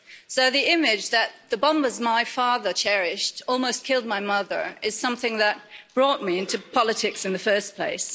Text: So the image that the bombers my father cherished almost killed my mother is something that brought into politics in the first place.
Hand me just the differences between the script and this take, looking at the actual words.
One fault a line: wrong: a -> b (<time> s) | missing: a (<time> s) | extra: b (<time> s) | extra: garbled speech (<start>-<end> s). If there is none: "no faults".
extra: me (6.2 s)